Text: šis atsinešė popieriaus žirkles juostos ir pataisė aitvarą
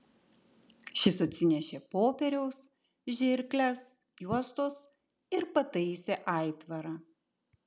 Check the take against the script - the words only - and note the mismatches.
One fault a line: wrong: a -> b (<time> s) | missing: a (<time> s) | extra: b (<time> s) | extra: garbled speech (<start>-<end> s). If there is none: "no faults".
no faults